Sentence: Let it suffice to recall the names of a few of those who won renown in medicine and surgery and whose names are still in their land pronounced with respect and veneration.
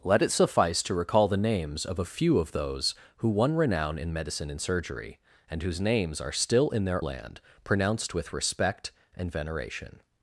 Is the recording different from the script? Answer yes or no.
no